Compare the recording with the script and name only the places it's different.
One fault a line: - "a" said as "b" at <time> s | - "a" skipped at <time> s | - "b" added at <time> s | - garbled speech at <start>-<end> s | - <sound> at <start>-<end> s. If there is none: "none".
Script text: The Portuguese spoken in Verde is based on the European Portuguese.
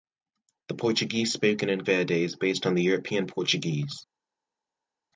none